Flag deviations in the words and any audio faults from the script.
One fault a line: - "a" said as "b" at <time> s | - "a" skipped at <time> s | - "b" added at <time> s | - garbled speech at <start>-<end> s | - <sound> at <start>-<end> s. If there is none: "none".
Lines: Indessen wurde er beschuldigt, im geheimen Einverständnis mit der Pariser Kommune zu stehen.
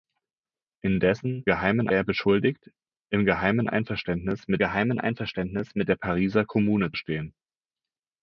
- "wurde" said as "geheimen" at 1.5 s
- "geheimen Einverständnis mit" added at 4.6 s
- "zu" skipped at 6.9 s